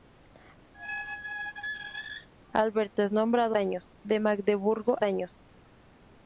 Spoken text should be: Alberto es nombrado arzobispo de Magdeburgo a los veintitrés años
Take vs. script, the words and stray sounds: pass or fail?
fail